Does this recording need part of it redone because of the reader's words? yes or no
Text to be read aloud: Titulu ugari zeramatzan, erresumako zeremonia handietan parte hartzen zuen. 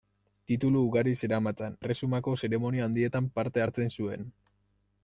no